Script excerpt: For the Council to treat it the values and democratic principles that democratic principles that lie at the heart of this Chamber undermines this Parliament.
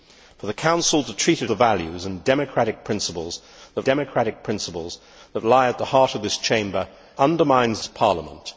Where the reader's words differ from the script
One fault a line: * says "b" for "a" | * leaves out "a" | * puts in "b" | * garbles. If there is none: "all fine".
all fine